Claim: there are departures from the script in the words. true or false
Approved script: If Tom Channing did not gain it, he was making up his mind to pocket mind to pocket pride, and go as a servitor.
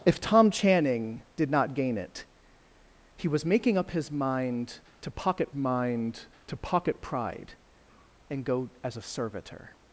false